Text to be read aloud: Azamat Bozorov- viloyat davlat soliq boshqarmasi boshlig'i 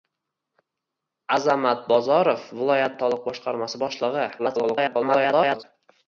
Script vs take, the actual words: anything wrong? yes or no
yes